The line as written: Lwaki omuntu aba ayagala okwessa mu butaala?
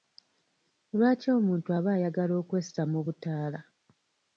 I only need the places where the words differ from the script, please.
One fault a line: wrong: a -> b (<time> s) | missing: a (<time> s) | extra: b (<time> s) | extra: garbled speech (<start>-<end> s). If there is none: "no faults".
no faults